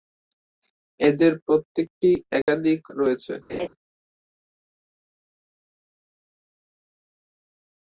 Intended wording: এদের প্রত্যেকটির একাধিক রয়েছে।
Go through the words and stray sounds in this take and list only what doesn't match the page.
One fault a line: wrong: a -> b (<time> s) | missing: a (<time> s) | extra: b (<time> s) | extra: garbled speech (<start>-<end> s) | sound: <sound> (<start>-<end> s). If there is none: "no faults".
sound: dropout (2.4-2.5 s)
sound: laugh (3.5-3.7 s)